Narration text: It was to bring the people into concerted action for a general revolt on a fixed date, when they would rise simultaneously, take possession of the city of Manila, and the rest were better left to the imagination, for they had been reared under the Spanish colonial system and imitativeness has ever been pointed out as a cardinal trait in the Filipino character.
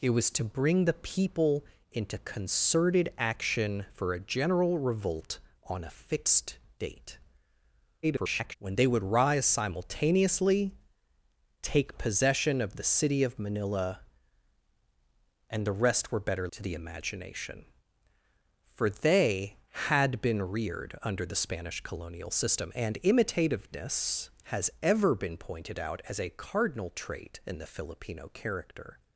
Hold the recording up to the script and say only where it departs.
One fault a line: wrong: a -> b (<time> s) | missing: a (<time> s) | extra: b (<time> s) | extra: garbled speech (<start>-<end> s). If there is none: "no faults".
extra: garbled speech (8.0-8.5 s)
missing: left (16.5 s)